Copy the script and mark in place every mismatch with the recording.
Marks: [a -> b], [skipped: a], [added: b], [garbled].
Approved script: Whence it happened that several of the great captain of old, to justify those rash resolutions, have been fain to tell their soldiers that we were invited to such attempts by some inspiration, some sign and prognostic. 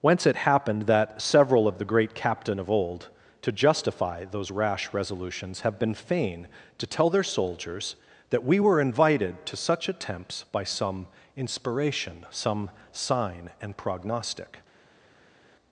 Whence it happened that several of the great captain of old, to justify those rash resolutions, have been fain to tell their soldiers that we were invited to such attempts by some inspiration, some sign and prognostic.